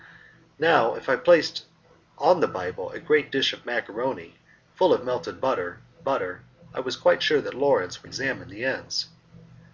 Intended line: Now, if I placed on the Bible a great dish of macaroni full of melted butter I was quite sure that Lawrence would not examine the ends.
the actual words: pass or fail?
fail